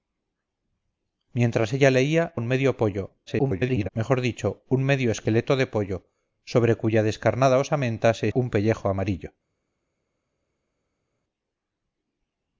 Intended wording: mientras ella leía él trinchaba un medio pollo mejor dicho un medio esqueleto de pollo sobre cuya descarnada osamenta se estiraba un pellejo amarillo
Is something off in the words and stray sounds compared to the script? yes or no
yes